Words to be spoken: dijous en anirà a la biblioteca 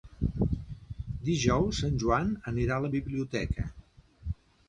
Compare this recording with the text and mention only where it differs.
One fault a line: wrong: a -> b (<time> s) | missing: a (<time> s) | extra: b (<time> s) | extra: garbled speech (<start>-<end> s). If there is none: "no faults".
extra: joan (2.0 s)